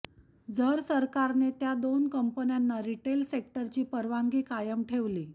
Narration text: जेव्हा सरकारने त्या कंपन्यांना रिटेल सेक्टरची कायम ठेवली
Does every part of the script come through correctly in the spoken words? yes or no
no